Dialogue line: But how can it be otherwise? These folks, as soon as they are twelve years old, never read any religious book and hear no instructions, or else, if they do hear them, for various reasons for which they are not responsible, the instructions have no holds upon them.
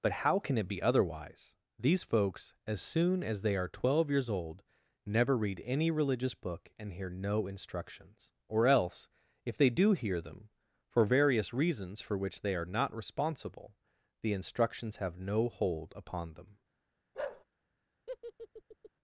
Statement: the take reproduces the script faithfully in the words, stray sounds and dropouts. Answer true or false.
false